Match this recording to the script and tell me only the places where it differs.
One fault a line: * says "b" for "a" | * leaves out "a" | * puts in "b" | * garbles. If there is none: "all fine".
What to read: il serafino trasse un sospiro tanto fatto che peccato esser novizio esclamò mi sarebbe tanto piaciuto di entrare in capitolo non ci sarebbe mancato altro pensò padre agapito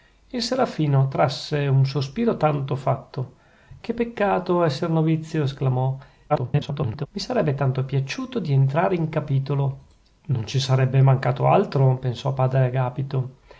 * garbles